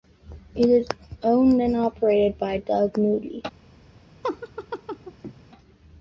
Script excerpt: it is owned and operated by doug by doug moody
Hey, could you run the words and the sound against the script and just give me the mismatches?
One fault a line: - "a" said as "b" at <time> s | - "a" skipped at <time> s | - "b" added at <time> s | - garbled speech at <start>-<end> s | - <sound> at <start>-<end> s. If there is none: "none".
- "by doug" skipped at 3.0 s
- laugh at 4.2-5.3 s